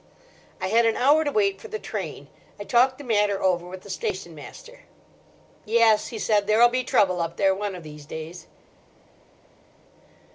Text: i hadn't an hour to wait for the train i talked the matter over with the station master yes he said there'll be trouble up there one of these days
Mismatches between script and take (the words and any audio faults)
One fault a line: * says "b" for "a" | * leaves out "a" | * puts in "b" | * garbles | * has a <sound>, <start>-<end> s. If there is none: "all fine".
* says "had" for "hadn't"